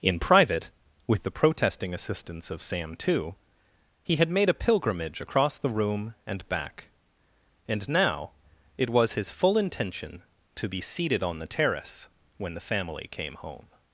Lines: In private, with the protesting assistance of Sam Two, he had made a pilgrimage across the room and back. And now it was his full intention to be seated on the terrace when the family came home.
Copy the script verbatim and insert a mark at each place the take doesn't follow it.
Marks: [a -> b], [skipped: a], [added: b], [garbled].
In private, with the protesting assistance of Sam Two, he had made a pilgrimage across the room and back. And now it was his full intention to be seated on the terrace when the family came home.